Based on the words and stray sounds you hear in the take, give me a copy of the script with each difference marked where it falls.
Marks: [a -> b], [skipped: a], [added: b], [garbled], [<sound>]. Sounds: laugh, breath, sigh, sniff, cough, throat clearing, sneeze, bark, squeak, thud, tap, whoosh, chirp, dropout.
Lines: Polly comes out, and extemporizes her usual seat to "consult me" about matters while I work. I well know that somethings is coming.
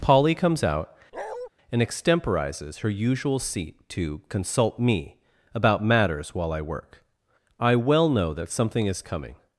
Polly comes out, [bark] and extemporizes her usual seat to "consult me" about matters while I work. I well know that [somethings -> something] is coming.